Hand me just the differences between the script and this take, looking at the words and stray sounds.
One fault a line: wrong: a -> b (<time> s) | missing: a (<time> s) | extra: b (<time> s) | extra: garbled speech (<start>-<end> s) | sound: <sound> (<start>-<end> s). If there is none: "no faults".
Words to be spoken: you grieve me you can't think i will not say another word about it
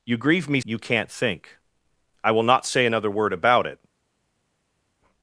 no faults